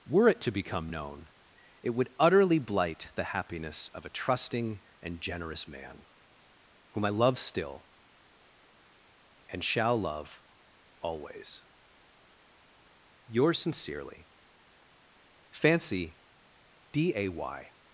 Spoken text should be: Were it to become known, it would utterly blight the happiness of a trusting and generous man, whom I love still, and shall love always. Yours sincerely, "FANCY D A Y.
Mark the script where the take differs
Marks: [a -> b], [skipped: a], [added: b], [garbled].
Were it to become known, it would utterly blight the happiness of a trusting and generous man, whom I love still, and shall love always. Yours sincerely, "FANCY D A Y.